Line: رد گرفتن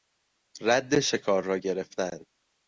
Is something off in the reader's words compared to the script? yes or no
yes